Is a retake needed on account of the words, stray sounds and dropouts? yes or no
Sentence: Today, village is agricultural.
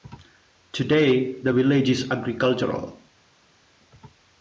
yes